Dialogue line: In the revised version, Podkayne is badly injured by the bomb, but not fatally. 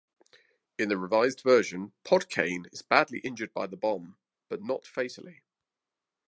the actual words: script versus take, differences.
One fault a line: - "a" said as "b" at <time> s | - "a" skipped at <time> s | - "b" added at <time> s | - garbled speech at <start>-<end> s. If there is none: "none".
none